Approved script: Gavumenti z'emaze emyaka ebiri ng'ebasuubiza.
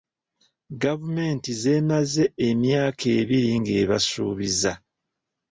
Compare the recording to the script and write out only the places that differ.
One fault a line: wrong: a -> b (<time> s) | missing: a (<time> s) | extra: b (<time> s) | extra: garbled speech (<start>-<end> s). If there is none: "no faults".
no faults